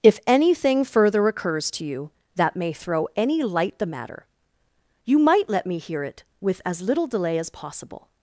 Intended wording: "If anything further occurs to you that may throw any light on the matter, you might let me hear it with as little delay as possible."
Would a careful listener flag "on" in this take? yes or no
yes